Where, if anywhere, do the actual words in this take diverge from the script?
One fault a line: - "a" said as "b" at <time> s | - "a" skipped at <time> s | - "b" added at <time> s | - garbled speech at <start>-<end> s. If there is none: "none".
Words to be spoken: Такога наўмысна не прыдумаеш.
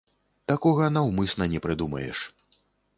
none